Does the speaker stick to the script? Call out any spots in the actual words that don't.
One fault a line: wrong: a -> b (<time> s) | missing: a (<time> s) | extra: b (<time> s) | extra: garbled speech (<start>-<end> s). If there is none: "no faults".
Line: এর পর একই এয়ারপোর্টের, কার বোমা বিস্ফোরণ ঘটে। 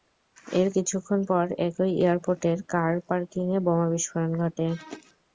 extra: কিছুক্ষণ (0.8 s)
extra: পার্কিংয়ে (3.1 s)